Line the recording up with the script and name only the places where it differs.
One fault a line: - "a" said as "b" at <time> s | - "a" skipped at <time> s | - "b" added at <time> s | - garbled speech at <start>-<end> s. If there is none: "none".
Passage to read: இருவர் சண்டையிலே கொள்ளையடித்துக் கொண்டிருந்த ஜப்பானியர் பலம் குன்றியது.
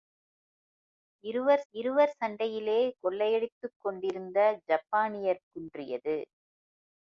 - "இருவர்" added at 1.7 s
- "பலம்" skipped at 5.4 s